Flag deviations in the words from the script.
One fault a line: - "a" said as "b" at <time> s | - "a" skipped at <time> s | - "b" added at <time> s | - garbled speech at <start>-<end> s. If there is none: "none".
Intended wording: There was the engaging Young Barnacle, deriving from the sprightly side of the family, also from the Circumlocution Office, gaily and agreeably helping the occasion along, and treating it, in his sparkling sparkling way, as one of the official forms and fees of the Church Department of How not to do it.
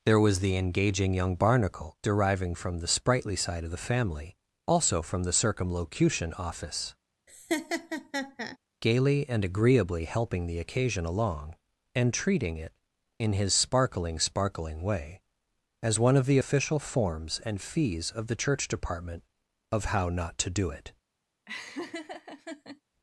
none